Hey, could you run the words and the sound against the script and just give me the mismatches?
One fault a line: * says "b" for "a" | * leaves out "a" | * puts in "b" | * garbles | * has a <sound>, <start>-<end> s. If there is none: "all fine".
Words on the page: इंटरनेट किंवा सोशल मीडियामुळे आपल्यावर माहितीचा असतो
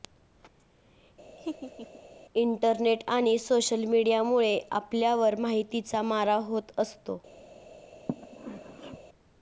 * has a laugh, 1.4-2.0 s
* says "आणि" for "किंवा"
* puts in "मारा होत"
* has a sneeze, 8.1-9.0 s